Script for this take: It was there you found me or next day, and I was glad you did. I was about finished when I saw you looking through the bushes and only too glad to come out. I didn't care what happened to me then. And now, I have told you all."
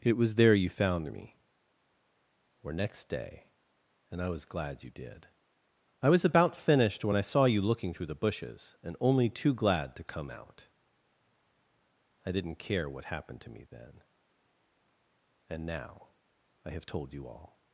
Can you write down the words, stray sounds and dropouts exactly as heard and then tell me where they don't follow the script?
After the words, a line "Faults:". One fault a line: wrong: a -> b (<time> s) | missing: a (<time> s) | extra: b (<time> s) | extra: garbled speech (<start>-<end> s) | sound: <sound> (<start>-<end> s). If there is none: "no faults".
It was there you found me or next day, and I was glad you did. I was about finished when I saw you looking through the bushes and only too glad to come out. I didn't care what happened to me then. And now, I have told you all."
Faults:
no faults